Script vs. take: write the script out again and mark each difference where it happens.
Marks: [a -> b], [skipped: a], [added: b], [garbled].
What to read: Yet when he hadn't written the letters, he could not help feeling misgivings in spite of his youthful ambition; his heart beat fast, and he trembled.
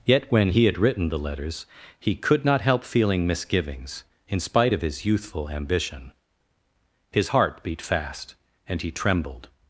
Yet when he [hadn't -> had] written the letters, he could not help feeling misgivings in spite of his youthful ambition; his heart beat fast, and he trembled.